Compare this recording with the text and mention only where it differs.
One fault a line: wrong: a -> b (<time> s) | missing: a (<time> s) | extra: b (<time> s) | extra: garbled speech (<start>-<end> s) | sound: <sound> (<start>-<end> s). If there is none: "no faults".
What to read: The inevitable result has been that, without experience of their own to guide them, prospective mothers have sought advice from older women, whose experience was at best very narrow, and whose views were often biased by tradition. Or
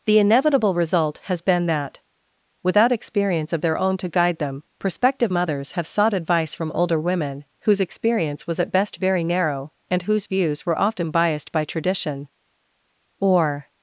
no faults